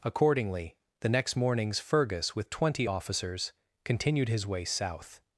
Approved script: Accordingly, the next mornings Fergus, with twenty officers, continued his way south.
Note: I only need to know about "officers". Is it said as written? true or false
true